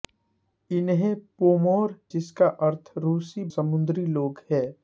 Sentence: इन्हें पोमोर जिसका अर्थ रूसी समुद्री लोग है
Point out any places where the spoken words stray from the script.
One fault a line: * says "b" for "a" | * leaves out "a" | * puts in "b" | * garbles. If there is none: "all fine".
all fine